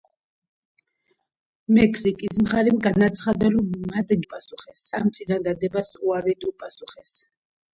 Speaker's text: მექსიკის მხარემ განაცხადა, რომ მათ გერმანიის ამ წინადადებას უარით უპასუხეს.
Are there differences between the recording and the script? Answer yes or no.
yes